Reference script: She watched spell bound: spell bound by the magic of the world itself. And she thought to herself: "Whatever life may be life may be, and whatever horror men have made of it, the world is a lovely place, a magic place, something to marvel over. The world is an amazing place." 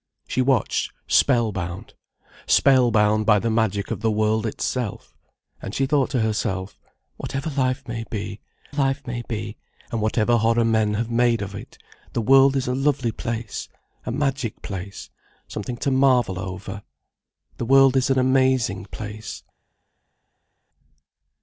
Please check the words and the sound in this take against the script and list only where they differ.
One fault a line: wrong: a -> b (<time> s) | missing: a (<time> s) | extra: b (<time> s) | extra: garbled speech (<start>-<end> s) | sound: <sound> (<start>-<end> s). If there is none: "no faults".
no faults